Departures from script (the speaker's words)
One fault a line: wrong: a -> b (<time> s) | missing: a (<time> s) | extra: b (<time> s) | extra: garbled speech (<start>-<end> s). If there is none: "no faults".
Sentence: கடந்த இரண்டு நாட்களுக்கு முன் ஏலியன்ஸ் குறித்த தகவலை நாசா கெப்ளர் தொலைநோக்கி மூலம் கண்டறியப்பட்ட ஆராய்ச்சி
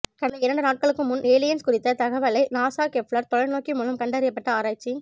no faults